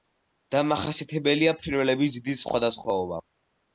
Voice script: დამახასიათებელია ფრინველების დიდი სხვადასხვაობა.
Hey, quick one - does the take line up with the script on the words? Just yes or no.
yes